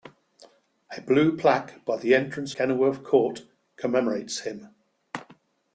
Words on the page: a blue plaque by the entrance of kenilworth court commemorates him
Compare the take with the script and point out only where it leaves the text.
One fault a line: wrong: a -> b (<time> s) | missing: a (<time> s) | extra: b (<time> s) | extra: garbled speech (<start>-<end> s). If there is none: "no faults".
missing: of (2.6 s)